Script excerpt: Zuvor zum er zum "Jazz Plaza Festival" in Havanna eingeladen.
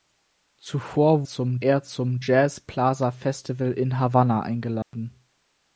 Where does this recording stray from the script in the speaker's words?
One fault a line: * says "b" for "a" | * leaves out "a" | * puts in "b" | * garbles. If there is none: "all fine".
all fine